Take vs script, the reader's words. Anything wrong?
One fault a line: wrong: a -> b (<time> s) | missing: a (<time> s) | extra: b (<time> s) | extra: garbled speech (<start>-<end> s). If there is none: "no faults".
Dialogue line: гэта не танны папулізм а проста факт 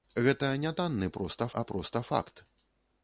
wrong: папулізм -> проста (1.1 s)